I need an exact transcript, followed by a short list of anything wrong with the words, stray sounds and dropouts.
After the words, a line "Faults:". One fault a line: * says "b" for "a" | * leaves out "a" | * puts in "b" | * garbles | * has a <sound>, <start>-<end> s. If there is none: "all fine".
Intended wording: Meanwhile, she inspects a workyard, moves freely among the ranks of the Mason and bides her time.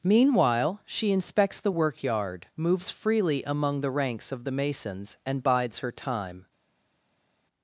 Meanwhile, she inspects the workyard, moves freely among the ranks of the Masons and bides her time.
Faults:
* says "the" for "a"
* says "Masons" for "Mason"